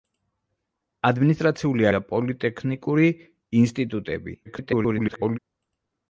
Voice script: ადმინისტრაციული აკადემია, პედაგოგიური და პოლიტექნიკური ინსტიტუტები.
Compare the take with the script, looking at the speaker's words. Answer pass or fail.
fail